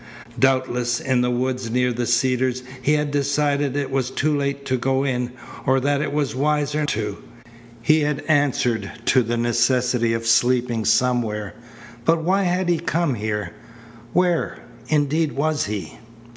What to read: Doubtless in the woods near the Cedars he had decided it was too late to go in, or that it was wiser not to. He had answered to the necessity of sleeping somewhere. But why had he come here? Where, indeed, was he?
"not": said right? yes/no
no